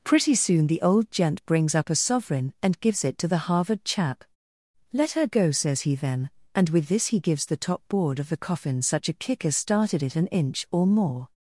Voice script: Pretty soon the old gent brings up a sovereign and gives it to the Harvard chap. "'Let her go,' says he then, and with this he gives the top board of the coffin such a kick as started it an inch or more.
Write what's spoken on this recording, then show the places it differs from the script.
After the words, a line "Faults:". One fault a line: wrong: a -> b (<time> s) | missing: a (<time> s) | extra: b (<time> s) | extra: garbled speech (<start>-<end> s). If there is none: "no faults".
Pretty soon the old gent brings up a sovereign and gives it to the Harvard chap. "'Let her go,' says he then, and with this he gives the top board of the coffin such a kick as started it an inch or more.
Faults:
no faults